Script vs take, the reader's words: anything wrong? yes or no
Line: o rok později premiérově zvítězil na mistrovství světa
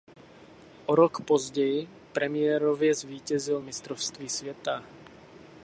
yes